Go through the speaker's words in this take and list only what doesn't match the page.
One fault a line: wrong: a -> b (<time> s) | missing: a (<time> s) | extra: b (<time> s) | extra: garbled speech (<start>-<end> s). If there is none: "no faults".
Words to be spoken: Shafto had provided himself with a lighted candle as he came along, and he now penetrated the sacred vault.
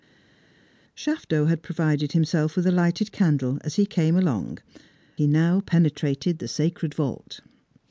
missing: and (4.6 s)